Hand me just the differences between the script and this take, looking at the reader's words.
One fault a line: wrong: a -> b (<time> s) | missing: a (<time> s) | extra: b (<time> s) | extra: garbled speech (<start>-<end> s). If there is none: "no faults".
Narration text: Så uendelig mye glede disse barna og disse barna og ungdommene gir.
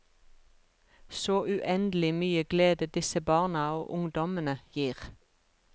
missing: disse barna og (3.9 s)